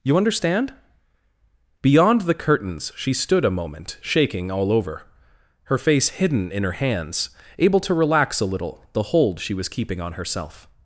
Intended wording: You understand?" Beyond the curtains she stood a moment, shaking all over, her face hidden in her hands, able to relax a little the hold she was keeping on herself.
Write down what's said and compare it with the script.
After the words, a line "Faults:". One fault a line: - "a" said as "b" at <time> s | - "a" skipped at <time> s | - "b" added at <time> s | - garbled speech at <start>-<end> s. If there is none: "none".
You understand?" Beyond the curtains she stood a moment, shaking all over, her face hidden in her hands, able to relax a little the hold she was keeping on herself.
Faults:
none